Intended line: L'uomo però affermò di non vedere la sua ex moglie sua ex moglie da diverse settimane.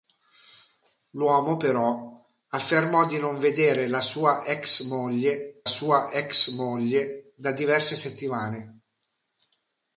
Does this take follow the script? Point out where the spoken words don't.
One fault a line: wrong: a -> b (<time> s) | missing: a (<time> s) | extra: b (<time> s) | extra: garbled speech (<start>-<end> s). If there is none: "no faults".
no faults